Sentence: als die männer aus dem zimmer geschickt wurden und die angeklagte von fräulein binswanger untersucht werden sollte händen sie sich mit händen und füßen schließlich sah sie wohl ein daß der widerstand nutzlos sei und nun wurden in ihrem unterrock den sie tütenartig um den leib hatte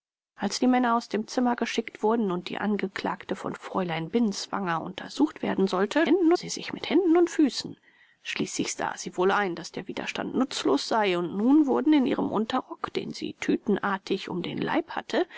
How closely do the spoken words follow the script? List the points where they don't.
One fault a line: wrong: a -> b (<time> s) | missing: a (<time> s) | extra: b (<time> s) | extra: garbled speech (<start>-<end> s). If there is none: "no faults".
no faults